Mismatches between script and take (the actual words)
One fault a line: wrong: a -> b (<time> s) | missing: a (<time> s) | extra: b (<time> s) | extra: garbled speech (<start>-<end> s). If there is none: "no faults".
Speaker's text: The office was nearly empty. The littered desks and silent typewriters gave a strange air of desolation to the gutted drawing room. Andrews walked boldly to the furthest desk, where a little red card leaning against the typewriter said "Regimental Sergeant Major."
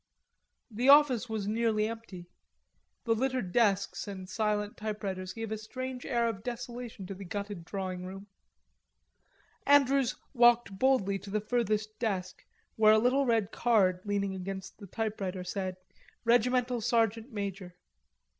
no faults